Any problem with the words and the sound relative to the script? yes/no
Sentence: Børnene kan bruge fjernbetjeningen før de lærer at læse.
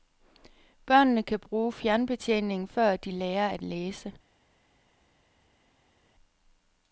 no